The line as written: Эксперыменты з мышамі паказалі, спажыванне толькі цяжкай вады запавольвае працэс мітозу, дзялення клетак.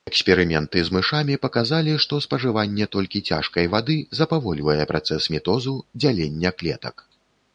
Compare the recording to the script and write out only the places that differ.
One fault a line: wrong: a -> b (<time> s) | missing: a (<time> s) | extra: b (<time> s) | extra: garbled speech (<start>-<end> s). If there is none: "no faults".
extra: што (2.0 s)